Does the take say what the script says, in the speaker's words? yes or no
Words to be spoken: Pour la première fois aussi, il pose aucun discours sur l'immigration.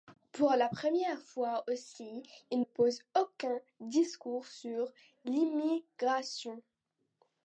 yes